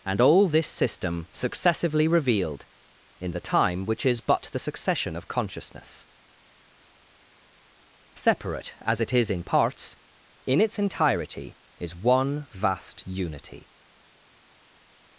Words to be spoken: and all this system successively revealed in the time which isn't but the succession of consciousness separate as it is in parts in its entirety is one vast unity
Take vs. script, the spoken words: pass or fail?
fail